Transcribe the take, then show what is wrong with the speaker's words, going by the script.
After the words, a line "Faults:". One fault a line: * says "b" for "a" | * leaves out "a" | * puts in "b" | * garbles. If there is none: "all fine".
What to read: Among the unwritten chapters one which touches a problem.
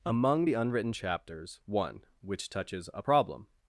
Among the unwritten chapters one which touches a problem.
Faults:
all fine